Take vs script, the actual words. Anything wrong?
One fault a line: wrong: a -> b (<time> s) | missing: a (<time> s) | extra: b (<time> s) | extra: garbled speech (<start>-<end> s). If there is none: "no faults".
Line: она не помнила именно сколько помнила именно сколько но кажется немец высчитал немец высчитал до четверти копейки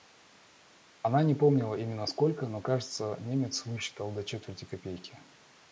missing: помнила именно сколько (2.5 s)
missing: немец высчитал (4.1 s)